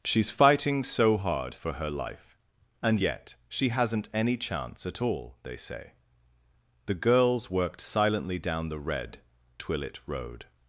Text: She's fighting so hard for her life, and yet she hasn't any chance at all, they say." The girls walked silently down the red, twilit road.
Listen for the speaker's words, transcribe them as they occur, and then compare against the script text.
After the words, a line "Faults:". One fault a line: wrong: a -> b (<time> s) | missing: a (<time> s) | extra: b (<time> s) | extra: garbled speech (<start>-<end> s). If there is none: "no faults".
She's fighting so hard for her life, and yet she hasn't any chance at all, they say." The girls worked silently down the red, twilit road.
Faults:
wrong: walked -> worked (7.5 s)